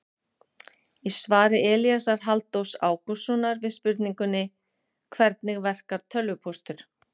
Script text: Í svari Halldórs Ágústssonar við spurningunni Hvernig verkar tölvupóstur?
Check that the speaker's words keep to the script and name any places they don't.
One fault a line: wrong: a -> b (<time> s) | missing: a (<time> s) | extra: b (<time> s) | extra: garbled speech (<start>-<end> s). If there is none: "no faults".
extra: Elíasar (1.7 s)